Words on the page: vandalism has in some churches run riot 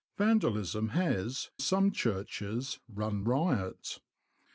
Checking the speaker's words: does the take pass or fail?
fail